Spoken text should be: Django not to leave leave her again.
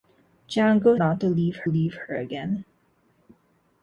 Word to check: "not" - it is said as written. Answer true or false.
true